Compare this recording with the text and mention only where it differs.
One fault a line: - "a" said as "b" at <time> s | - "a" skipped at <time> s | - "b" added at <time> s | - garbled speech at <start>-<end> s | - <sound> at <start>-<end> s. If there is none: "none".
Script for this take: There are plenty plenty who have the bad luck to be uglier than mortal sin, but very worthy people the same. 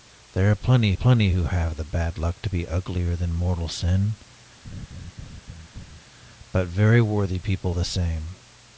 - laugh at 4.6-6.0 s